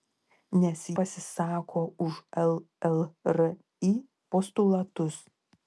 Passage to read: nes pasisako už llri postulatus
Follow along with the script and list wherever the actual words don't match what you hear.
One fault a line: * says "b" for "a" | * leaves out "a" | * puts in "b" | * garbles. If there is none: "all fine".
all fine